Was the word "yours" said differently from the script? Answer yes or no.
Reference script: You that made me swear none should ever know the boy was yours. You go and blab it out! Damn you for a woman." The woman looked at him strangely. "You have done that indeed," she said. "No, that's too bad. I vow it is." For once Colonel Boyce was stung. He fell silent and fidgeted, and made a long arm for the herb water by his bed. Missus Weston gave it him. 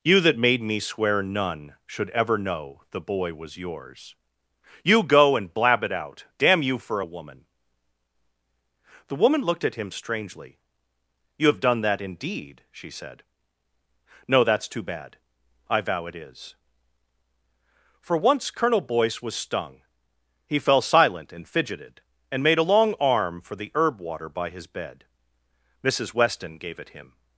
no